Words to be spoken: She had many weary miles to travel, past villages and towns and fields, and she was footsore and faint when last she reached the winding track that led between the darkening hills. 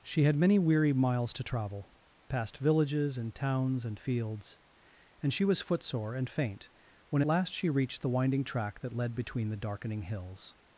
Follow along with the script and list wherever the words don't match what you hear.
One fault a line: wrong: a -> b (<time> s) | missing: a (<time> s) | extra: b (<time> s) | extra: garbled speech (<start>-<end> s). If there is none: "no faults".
no faults